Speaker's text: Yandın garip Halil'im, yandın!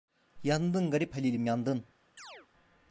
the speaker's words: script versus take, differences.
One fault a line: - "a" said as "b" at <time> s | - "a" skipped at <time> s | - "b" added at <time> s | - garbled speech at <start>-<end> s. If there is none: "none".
none